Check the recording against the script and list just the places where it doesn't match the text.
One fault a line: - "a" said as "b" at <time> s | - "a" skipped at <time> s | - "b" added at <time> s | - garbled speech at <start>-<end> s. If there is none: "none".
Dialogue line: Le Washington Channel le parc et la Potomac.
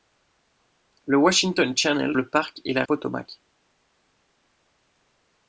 none